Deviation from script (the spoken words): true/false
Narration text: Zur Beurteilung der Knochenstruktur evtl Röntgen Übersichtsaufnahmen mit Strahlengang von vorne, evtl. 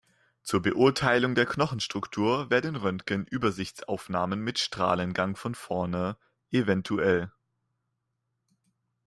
true